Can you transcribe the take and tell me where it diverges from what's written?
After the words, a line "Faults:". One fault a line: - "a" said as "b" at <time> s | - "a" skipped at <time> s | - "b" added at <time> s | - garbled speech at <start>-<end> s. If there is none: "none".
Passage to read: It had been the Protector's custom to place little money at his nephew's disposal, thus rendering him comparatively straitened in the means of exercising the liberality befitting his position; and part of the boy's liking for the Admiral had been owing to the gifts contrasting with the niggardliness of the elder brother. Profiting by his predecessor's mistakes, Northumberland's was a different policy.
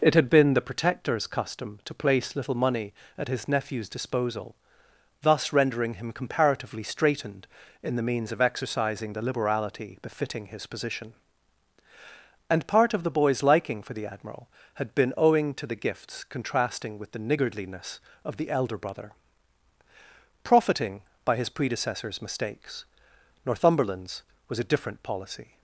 It had been the Protector's custom to place little money at his nephew's disposal, thus rendering him comparatively straitened in the means of exercising the liberality befitting his position; and part of the boy's liking for the Admiral had been owing to the gifts contrasting with the niggardliness of the elder brother. Profiting by his predecessor's mistakes, Northumberland's was a different policy.
Faults:
none